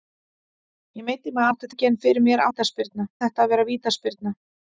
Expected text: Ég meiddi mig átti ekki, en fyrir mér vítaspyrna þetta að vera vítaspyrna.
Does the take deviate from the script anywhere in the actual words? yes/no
no